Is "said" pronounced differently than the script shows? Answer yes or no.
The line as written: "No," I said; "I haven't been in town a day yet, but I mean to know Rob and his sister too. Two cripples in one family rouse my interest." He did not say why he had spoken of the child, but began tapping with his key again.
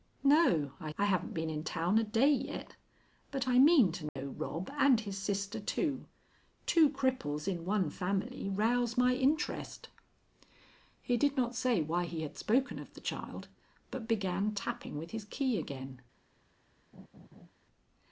yes